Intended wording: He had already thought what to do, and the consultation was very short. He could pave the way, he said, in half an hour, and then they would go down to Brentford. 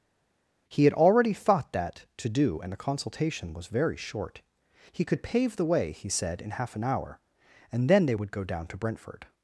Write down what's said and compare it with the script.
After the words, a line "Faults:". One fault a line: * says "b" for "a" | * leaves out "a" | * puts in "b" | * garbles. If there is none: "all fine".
He had already thought that to do, and the consultation was very short. He could pave the way, he said, in half an hour, and then they would go down to Brentford.
Faults:
* says "that" for "what"